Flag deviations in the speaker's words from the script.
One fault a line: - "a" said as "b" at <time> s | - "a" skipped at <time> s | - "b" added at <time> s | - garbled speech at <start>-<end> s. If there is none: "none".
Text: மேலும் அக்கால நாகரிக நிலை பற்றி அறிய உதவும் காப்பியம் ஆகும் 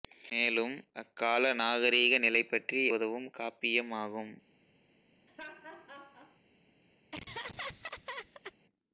- "அறிய" skipped at 2.8 s